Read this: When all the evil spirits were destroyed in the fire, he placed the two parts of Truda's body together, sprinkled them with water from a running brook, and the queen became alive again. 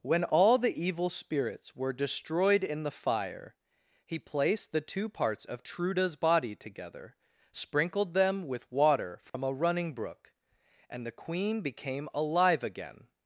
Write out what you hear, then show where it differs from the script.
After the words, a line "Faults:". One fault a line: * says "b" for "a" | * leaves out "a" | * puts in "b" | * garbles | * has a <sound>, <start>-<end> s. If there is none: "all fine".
When all the evil spirits were destroyed in the fire, he placed the two parts of Truda's body together, sprinkled them with water from a running brook, and the queen became alive again.
Faults:
* has a dropout, 9.3-9.3 s